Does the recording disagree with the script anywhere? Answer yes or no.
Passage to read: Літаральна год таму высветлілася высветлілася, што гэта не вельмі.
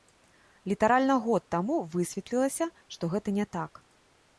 yes